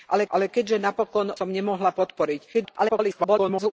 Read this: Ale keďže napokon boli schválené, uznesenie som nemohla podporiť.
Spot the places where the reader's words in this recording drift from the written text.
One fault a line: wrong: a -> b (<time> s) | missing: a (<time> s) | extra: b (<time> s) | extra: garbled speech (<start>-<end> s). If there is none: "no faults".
extra: ale (0.3 s)
missing: boli schválené uznesenie (1.3 s)
extra: garbled speech (2.5-3.7 s)